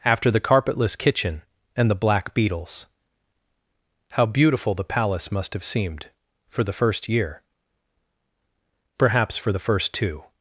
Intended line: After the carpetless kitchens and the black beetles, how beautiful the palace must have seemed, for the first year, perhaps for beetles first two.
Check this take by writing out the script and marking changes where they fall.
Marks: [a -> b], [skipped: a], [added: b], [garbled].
After the carpetless [kitchens -> kitchen] and the black beetles, how beautiful the palace must have seemed, for the first year, perhaps for [beetles -> the] first two.